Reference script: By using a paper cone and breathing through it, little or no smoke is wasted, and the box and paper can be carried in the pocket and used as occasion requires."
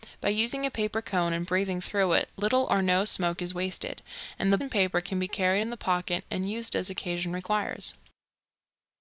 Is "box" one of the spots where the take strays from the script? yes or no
yes